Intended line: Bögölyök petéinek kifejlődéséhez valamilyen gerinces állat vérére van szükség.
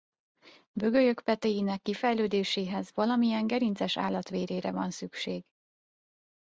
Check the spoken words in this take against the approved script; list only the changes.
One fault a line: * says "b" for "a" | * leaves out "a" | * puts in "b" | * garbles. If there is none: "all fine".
all fine